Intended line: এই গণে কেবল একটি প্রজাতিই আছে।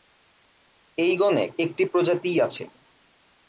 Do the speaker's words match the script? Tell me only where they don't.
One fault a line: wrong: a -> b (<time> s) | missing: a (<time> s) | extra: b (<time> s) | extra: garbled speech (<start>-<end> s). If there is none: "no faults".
missing: কেবল (1.4 s)